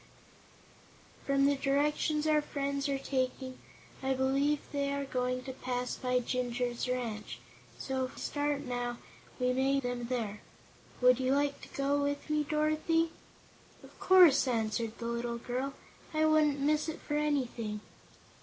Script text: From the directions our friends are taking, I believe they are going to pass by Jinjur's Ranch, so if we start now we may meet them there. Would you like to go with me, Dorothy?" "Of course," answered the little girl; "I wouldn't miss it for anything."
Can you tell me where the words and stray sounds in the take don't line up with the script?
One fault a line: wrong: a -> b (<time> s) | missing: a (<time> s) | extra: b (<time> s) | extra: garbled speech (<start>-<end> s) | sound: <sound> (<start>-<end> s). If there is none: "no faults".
missing: we (8.2 s)
missing: meet (9.8 s)